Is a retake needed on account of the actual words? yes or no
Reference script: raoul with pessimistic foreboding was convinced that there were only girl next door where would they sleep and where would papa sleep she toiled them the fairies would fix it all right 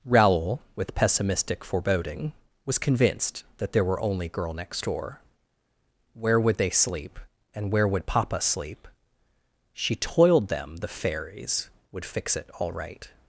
no